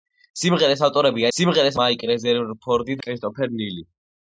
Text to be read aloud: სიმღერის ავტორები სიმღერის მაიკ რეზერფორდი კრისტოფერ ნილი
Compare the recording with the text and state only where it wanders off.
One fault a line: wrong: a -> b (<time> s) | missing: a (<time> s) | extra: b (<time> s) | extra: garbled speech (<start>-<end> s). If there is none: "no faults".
no faults